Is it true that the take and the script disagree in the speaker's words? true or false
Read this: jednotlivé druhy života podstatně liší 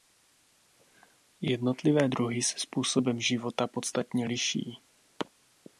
true